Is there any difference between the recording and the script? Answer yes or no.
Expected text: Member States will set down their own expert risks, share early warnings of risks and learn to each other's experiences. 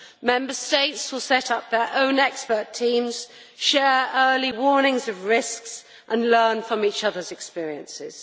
yes